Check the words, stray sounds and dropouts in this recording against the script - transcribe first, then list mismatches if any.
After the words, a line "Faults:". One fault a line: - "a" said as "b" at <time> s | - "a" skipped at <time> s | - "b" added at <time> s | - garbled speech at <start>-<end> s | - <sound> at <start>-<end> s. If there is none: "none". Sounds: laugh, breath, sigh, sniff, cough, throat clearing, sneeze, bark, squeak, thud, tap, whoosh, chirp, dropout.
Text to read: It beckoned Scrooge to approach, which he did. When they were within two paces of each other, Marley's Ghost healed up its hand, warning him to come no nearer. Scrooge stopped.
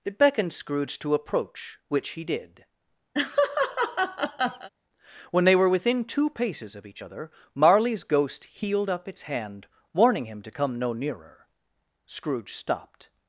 It beckoned Scrooge to approach, which he did. When they were within two paces of each other, Marley's Ghost healed up its hand, warning him to come no nearer. Scrooge stopped.
Faults:
- laugh at 3.1-4.7 s